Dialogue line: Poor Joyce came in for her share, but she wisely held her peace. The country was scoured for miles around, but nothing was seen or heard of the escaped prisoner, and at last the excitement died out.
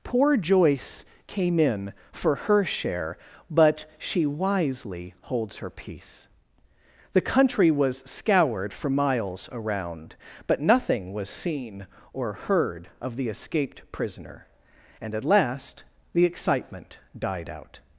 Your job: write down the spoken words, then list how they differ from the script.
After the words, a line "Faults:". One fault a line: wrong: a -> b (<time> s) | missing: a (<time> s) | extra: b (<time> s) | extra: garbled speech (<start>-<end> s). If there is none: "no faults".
Poor Joyce came in for her share, but she wisely holds her peace. The country was scoured for miles around, but nothing was seen or heard of the escaped prisoner, and at last the excitement died out.
Faults:
wrong: held -> holds (5.2 s)